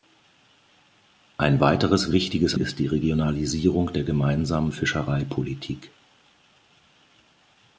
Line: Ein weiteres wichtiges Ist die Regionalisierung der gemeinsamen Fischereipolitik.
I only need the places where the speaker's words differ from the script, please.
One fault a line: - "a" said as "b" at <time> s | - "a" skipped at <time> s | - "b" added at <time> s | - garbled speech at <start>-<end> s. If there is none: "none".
none